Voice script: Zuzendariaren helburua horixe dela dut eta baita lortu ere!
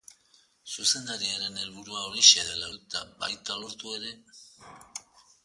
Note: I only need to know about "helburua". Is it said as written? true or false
true